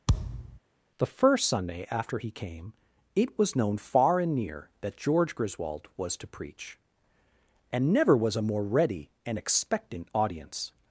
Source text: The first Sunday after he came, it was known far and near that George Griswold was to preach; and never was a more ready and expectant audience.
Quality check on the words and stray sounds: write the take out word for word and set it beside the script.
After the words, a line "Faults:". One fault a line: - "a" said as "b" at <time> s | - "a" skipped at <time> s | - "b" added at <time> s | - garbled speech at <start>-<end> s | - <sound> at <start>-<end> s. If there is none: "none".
The first Sunday after he came, it was known far and near that George Griswold was to preach; and never was a more ready and expectant audience.
Faults:
- thud at 0.1-0.6 s